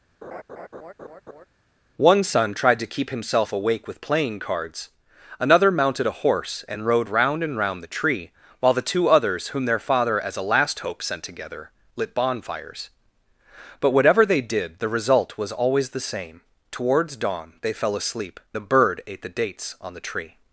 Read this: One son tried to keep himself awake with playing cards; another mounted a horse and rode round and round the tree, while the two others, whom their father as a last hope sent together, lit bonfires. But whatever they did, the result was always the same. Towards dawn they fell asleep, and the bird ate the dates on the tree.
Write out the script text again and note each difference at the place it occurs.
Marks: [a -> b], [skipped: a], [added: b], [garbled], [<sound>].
[laugh] One son tried to keep himself awake with playing cards; another mounted a horse and rode round and round the tree, while the two others, whom their father as a last hope sent together, lit bonfires. But whatever they did, the result was always the same. Towards dawn they fell asleep, [skipped: and] the bird ate the dates on the tree.